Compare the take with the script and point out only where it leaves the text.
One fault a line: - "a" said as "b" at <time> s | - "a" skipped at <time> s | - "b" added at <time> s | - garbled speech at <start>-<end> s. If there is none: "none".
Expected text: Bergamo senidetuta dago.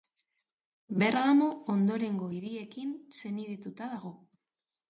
- "ondorengo hiriekin" added at 1.7 s